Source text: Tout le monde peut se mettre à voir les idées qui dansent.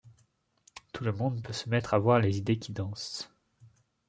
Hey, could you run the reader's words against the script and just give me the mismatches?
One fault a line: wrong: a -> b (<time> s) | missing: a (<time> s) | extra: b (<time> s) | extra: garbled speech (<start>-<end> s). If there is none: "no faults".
no faults